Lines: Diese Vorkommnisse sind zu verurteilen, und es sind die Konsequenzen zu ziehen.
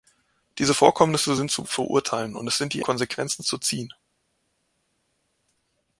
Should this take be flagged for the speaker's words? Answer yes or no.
no